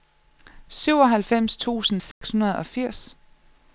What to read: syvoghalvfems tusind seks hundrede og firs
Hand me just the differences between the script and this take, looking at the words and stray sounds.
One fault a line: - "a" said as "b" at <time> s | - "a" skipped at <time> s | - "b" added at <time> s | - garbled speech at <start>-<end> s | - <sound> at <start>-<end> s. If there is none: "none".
- dropout at 2.1-2.2 s